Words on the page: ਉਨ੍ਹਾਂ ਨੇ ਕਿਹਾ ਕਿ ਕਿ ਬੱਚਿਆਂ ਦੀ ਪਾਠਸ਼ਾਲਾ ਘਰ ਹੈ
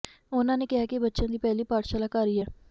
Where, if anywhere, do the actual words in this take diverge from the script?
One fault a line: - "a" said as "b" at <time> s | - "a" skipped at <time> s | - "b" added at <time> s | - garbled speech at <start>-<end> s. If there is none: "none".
- "ਕਿ" skipped at 1.0 s
- "ਪਹਿਲੀ" added at 1.4 s
- "ਹੀ" added at 2.3 s